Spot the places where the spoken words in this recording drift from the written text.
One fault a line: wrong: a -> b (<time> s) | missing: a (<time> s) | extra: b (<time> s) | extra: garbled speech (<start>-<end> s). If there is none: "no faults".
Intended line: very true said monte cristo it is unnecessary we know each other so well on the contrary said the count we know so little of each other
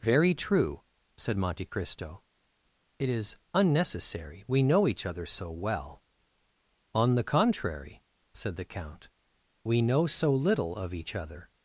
no faults